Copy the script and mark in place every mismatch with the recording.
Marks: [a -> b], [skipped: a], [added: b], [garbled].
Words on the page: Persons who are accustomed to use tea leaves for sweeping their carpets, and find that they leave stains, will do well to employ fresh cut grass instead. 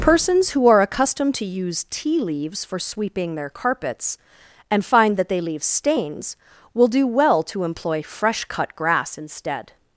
Persons who are accustomed to use tea leaves for sweeping their carpets, and find that they leave stains, will do well to employ fresh cut grass instead.